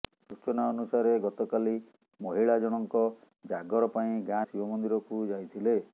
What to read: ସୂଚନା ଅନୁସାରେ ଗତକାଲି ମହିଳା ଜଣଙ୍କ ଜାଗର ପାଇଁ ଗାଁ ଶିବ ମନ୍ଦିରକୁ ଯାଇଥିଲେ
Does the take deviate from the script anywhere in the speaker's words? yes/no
no